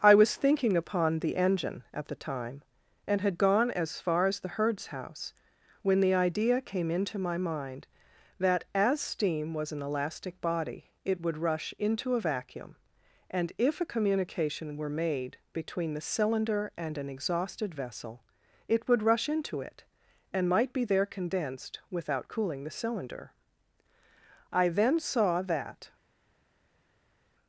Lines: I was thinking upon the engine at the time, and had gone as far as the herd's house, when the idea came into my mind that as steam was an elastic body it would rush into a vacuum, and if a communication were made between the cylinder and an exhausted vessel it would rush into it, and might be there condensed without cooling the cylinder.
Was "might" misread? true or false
false